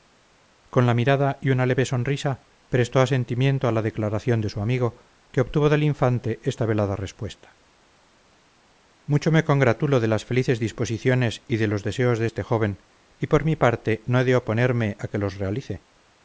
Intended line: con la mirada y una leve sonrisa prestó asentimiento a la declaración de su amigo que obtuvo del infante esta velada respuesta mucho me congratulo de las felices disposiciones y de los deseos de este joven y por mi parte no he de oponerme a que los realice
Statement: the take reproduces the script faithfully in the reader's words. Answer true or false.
true